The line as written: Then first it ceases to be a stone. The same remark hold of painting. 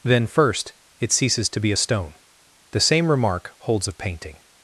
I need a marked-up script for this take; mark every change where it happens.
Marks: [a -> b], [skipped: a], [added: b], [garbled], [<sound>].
Then first it ceases to be a stone. The same remark [hold -> holds] of painting.